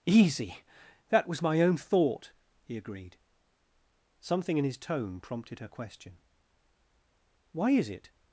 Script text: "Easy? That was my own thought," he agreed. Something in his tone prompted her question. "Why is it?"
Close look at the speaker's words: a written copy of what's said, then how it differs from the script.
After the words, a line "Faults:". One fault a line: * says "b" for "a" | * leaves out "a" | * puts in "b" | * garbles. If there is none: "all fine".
"Easy? That was my own thought," he agreed. Something in his tone prompted her question. "Why is it?"
Faults:
all fine